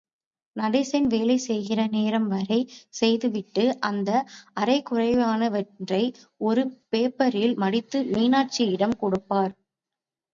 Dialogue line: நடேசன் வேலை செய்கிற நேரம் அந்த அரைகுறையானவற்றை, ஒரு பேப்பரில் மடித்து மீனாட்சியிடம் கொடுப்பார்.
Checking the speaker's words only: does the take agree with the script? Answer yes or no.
no